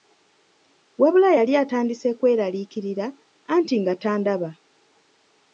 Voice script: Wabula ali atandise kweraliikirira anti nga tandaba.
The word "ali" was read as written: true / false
false